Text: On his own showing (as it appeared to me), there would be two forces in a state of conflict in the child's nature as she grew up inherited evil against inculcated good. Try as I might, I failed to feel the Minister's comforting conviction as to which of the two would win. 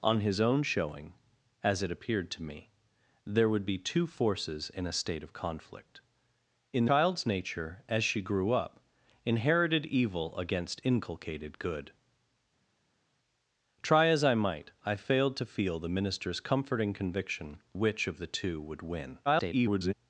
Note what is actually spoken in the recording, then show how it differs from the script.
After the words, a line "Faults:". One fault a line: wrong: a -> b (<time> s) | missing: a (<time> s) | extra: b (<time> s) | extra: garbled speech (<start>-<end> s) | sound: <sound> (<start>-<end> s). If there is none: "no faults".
On his own showing (as it appeared to me), there would be two forces in a state of conflict in child's nature as she grew up inherited evil against inculcated good. Try as I might, I failed to feel the Minister's comforting conviction which of the two would win. [garbled]
Faults:
missing: the (6.8 s)
missing: as to (17.6 s)
extra: garbled speech (19.3-19.9 s)